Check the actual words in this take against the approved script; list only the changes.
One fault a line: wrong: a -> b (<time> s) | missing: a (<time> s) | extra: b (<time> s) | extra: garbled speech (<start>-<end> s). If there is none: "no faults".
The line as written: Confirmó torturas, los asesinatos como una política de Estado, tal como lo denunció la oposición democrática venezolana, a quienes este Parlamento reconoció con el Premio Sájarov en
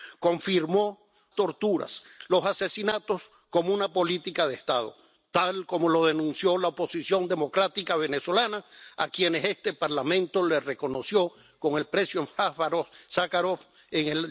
no faults